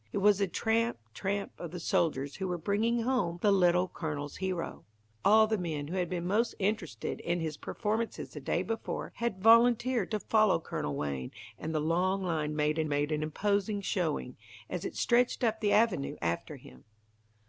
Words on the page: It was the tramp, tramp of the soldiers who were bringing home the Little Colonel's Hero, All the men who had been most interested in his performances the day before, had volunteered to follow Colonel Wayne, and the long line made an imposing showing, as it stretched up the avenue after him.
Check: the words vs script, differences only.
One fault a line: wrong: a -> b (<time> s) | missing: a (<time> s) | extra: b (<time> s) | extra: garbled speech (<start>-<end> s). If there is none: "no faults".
extra: made an (12.9 s)